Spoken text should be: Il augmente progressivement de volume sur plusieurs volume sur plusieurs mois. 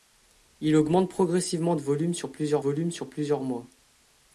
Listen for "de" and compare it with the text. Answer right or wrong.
right